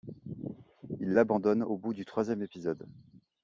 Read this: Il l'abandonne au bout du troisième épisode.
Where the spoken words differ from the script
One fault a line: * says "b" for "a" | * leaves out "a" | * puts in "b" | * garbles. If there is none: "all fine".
all fine